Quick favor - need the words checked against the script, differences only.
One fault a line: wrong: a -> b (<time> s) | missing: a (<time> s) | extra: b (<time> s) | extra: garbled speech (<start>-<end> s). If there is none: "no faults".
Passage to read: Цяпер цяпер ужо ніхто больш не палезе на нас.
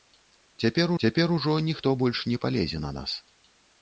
no faults